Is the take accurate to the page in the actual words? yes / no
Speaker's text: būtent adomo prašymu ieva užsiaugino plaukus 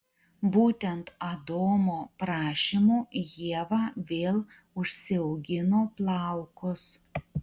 no